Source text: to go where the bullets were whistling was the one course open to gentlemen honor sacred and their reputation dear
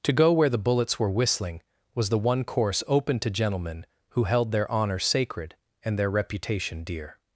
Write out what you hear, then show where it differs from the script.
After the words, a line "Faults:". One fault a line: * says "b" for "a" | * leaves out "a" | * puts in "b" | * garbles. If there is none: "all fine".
to go where the bullets were whistling was the one course open to gentlemen who held their honor sacred and their reputation dear
Faults:
* puts in "who held their"